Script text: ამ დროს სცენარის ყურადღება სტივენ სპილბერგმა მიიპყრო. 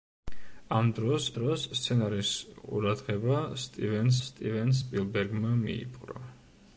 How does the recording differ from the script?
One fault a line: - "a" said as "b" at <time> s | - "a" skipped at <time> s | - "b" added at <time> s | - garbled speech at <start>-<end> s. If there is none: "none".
- "დროს" added at 1.4 s
- "სტივენ" added at 4.3 s